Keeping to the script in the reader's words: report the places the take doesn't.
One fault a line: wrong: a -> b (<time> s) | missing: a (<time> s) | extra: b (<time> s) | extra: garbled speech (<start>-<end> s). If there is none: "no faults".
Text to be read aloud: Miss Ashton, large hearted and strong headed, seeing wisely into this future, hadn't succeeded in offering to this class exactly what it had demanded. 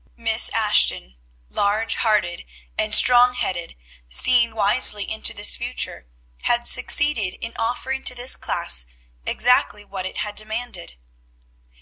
wrong: hadn't -> had (6.4 s)